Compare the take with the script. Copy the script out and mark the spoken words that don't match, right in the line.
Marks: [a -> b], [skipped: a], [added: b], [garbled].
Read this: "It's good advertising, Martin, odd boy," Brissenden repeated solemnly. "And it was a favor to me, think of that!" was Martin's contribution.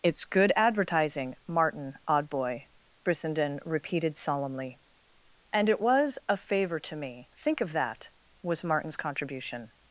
"It's good advertising, Martin, odd boy," Brissenden repeated solemnly. "And it was a favor to me, think of that!" was Martin's contribution.